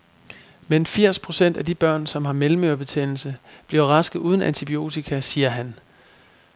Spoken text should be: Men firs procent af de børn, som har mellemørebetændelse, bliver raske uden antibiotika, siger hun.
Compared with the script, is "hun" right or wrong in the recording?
wrong